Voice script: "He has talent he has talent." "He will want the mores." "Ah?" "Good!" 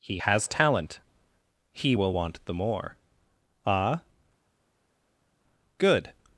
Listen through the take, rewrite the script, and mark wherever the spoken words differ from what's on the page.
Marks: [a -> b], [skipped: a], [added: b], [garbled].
"He has talent he [skipped: has talent." "He] will want the [mores." -> more] "Ah?" "Good!"